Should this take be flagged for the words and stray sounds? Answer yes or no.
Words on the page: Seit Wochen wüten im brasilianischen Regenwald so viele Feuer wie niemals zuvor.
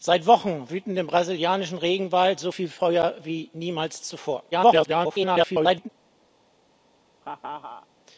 yes